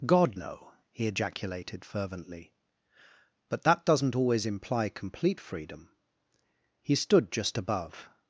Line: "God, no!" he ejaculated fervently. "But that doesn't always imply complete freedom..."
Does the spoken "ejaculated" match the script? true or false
true